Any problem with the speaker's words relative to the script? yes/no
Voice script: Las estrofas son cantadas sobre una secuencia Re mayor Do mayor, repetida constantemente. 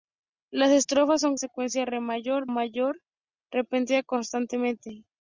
yes